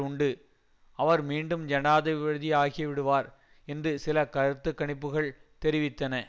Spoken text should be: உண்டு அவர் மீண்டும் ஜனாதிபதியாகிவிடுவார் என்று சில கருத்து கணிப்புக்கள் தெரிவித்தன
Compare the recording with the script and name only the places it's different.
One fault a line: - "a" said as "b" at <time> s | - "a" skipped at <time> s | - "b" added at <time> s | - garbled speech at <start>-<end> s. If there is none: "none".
none